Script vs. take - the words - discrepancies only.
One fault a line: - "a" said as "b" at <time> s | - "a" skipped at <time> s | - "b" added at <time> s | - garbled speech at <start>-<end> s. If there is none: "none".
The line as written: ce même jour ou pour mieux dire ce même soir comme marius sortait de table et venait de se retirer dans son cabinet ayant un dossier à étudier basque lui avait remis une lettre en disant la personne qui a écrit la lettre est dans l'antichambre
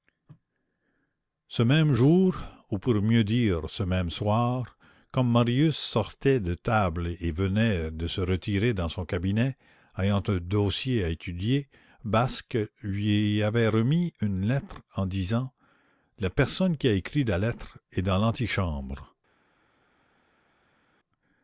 none